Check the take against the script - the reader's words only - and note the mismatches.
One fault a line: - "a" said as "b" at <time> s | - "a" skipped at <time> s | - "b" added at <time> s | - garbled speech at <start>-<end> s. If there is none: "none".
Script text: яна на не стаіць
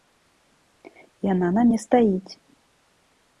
none